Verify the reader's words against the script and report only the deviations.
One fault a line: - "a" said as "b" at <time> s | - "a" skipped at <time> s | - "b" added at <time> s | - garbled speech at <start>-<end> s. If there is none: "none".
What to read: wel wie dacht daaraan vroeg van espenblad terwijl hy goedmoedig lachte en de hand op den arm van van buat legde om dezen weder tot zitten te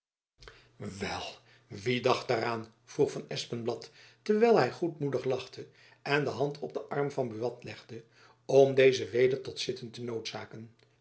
- "van" skipped at 7.3 s